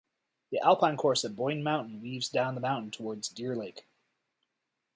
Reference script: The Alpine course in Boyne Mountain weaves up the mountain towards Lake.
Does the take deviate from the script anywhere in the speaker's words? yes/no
yes